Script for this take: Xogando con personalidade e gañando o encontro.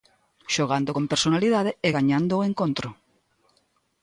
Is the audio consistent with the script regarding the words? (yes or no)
yes